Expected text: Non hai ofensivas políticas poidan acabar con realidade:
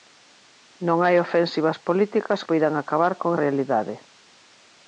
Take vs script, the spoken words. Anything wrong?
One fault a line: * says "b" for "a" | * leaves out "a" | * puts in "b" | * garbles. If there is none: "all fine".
all fine